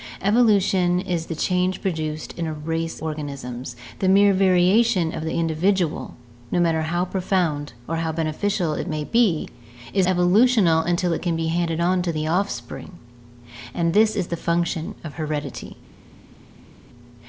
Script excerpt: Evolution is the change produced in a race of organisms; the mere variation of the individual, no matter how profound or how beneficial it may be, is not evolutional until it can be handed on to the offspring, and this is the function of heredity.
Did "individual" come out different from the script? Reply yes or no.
no